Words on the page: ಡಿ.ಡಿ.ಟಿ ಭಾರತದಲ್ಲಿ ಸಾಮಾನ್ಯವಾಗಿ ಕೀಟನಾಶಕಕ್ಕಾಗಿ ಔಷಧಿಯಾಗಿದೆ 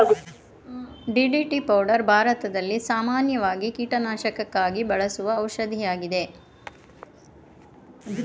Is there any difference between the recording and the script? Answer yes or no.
yes